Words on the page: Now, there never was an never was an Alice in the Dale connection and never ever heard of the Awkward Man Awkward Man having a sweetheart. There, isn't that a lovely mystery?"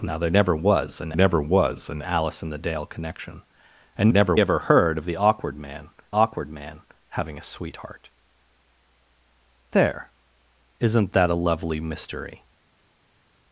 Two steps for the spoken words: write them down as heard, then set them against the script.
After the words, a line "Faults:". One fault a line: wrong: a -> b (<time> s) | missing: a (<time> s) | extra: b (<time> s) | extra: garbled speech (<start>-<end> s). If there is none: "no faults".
Now, there never was an never was an Alice in the Dale connection and never ever heard of the Awkward Man Awkward Man having a sweetheart. There, isn't that a lovely mystery?"
Faults:
no faults